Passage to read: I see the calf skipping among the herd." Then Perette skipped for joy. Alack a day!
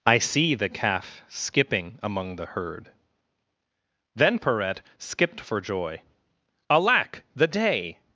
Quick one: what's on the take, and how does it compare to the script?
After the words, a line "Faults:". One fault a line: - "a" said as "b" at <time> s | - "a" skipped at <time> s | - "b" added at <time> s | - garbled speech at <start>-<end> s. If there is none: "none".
I see the calf skipping among the herd." Then Perette skipped for joy. Alack the day!
Faults:
- "a" said as "the" at 7.3 s